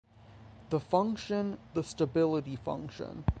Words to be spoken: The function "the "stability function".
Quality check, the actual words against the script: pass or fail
pass